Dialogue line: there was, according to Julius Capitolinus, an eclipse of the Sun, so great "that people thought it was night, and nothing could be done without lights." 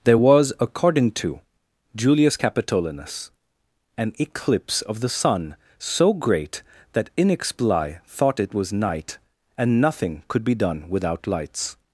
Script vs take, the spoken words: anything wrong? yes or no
yes